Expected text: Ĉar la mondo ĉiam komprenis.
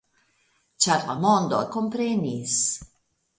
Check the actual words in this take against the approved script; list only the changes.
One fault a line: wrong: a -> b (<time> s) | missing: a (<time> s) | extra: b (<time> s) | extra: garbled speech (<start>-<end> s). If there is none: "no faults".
missing: ĉiam (1.6 s)